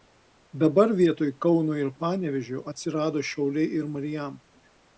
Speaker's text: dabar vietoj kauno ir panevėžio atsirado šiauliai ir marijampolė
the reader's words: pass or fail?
pass